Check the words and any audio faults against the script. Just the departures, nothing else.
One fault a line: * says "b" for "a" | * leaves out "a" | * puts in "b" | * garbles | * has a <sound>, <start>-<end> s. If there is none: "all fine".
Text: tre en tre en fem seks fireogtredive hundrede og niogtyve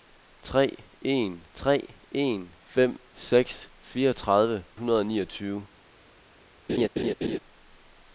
* has a laugh, 6.7-7.4 s